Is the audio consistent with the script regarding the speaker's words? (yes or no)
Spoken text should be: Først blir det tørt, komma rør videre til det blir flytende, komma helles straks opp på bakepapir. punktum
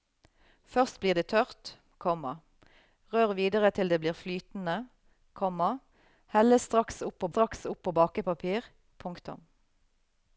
no